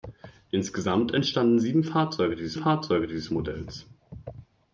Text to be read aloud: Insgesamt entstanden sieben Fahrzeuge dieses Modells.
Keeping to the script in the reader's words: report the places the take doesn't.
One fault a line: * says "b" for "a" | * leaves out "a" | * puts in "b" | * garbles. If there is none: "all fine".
* puts in "Fahrzeuge dieses"